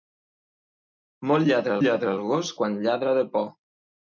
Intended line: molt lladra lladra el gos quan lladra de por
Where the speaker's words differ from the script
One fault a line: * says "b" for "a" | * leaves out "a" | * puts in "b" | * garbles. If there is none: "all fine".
all fine